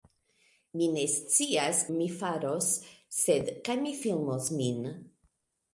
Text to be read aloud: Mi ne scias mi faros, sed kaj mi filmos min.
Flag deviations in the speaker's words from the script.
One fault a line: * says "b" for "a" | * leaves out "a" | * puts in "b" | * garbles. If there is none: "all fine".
all fine